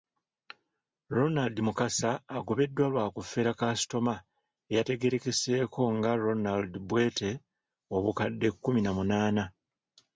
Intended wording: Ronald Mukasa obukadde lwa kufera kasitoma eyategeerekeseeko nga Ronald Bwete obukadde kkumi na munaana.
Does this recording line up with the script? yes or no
no